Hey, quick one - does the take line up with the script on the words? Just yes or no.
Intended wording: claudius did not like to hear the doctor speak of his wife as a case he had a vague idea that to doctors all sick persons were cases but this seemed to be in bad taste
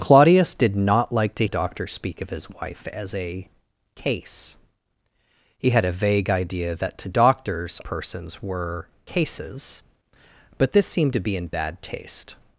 no